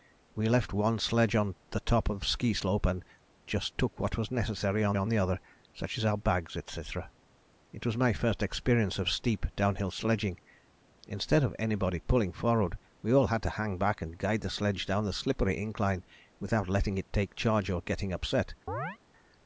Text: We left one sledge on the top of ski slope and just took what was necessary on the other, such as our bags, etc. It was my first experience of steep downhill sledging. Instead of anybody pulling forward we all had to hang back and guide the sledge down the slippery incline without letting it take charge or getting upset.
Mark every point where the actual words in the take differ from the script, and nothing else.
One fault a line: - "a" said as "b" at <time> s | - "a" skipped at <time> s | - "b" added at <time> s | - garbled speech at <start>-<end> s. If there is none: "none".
- "on" added at 4.9 s